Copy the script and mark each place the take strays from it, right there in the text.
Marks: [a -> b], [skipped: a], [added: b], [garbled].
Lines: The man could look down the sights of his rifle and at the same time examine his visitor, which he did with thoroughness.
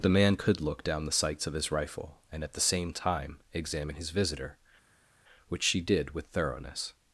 The man could look down the sights of his rifle and at the same time examine his visitor, which [he -> she] did with thoroughness.